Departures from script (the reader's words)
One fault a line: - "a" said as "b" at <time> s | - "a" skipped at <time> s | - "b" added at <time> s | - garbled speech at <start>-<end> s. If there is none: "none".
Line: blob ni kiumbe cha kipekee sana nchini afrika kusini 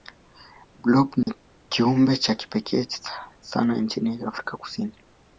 none